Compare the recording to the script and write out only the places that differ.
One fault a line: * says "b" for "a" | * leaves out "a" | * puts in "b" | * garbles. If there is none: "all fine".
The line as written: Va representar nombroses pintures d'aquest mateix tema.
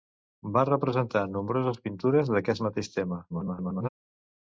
* garbles